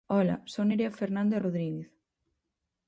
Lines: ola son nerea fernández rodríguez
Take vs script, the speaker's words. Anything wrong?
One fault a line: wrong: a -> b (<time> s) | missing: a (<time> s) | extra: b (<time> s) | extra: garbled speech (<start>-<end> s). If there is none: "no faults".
no faults